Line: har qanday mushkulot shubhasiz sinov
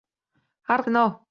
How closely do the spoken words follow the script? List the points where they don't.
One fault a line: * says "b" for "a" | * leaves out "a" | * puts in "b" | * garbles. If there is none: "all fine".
* leaves out "qanday mushkulot shubhasiz"